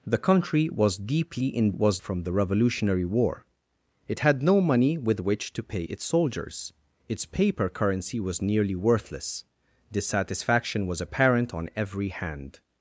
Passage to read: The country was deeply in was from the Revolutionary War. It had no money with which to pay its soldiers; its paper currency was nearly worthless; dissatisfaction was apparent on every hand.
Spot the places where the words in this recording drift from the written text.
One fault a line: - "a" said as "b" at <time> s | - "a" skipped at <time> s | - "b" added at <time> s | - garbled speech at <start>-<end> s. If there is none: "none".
none